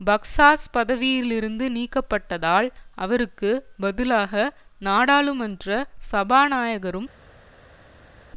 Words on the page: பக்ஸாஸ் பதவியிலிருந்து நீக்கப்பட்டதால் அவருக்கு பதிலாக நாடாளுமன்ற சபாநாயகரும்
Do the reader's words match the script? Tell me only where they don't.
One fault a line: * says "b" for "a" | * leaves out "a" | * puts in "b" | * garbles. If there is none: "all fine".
all fine